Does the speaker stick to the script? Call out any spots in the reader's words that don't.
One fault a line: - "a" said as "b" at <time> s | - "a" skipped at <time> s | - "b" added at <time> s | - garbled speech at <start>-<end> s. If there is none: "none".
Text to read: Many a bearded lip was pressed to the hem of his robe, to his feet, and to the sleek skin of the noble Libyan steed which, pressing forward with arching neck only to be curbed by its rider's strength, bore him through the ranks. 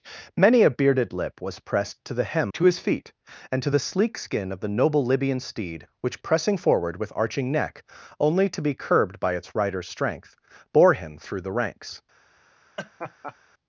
- "of his robe" skipped at 2.5 s